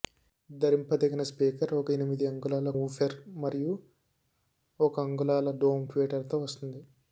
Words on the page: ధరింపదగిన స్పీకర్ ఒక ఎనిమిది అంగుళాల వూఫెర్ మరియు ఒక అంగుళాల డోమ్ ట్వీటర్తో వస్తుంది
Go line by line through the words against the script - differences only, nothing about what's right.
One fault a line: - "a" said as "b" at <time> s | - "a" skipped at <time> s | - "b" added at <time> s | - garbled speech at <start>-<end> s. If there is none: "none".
none